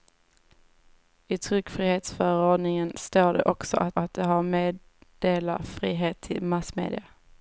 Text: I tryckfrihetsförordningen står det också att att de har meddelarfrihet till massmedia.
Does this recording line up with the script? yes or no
yes